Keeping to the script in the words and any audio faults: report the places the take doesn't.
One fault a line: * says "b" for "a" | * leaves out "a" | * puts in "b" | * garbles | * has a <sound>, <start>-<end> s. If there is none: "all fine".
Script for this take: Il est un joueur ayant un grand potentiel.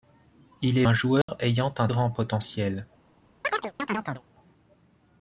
* has a dropout, 1.2-1.3 s
* has a chirp, 3.4-4.2 s